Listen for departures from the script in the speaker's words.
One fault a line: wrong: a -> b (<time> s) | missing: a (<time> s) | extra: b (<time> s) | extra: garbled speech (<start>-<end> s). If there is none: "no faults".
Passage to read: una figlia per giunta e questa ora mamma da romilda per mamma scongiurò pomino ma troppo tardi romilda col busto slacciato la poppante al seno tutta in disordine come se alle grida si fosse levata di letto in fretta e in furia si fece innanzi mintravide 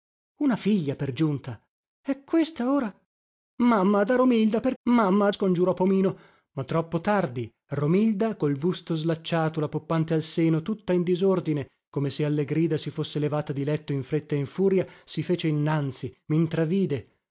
no faults